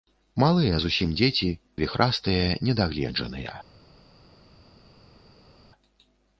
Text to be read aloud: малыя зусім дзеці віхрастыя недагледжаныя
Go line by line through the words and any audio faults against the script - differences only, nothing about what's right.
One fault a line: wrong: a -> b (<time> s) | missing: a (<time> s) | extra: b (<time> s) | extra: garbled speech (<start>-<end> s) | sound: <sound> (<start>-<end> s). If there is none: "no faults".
no faults